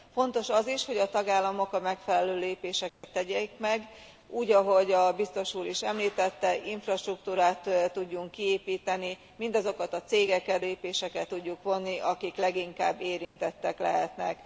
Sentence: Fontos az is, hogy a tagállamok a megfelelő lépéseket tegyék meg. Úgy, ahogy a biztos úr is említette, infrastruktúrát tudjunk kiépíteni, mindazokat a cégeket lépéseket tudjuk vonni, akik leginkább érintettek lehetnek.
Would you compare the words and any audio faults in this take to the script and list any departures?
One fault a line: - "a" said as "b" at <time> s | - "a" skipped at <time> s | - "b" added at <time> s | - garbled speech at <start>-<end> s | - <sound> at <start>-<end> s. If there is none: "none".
- dropout at 2.9-3.0 s
- dropout at 13.2-13.4 s